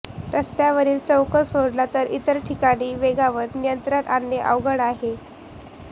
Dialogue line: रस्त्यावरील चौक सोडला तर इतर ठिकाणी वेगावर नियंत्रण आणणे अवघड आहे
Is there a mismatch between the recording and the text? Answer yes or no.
no